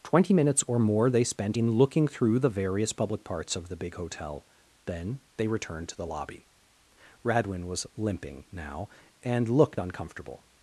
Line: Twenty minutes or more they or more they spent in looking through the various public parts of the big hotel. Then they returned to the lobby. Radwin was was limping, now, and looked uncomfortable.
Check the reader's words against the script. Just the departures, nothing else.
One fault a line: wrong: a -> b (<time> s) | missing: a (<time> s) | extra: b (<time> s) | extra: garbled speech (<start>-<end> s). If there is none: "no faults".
missing: or more they (1.2 s)
missing: was (7.9 s)